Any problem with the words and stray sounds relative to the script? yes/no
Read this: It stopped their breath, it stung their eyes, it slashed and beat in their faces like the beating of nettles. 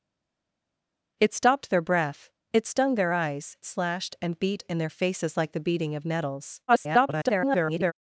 yes